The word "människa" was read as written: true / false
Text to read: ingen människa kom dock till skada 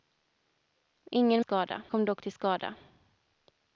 false